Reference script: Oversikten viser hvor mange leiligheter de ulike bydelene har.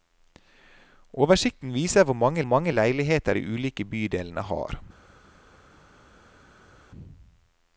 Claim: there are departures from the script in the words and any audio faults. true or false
true